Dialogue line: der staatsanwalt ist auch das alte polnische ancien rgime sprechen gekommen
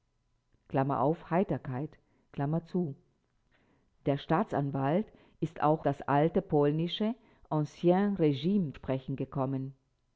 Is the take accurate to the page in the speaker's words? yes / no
yes